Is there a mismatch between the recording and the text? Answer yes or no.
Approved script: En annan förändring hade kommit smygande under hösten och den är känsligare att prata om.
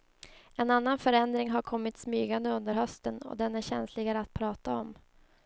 yes